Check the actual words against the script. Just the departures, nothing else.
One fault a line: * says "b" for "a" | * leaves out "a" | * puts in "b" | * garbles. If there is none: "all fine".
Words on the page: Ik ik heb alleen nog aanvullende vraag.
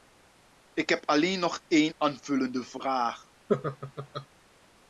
* leaves out "ik"
* puts in "één"